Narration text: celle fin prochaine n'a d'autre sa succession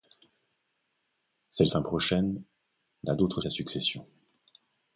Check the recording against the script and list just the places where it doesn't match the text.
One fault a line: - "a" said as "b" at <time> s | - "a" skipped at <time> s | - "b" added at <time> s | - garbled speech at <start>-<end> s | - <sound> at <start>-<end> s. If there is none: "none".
none